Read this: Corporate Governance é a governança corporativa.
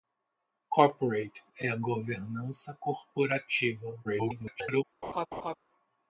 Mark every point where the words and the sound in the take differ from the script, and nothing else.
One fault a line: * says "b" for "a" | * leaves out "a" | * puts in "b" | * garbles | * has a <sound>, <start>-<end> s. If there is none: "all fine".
* leaves out "Governance"
* garbles
* has a laugh, 5.0-5.5 s